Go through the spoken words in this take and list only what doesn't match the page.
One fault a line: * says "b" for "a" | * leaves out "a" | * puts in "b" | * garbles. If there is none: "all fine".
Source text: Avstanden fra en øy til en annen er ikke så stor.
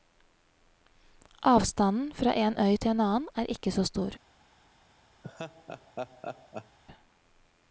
all fine